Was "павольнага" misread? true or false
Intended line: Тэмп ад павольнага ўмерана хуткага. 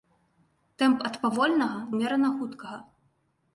false